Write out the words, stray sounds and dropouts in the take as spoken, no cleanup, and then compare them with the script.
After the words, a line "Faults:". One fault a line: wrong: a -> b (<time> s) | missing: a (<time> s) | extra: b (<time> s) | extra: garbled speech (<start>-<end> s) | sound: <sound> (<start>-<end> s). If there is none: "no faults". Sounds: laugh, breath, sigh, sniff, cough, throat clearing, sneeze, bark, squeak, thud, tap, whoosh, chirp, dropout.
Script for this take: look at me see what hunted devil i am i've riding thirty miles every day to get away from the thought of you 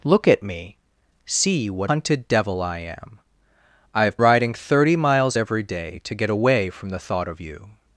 look at me see what hunted devil i am i've riding thirty miles every day to get away from the thought of you
Faults:
no faults